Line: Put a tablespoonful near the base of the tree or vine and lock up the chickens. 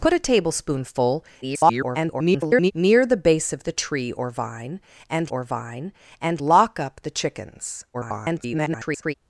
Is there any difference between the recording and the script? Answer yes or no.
yes